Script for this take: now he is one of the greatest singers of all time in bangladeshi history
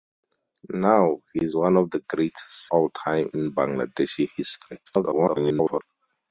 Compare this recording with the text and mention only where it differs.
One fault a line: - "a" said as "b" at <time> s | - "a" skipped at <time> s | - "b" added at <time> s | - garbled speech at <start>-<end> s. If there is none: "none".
- "singers of" skipped at 2.7 s
- garbled speech at 4.9-5.8 s